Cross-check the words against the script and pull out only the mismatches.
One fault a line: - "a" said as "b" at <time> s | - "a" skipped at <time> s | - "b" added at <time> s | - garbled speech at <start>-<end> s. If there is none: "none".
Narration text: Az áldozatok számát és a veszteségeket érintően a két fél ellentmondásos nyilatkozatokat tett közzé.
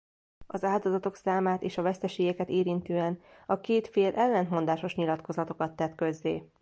none